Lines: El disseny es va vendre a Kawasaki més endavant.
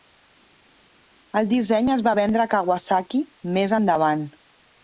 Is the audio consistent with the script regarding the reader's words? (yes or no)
yes